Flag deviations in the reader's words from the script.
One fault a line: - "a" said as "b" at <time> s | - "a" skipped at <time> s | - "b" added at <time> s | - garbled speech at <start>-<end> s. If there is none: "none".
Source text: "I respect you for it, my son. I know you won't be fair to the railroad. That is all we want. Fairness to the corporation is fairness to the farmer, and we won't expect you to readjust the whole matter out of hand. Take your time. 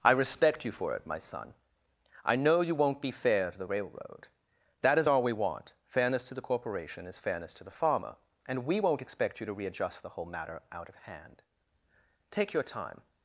none